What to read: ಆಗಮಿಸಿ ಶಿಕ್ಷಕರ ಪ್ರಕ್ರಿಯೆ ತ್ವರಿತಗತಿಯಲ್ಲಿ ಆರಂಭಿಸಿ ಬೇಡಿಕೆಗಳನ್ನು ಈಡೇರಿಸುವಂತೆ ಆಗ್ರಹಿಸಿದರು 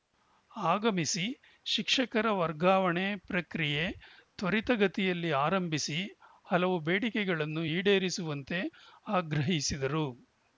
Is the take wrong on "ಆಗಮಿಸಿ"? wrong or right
right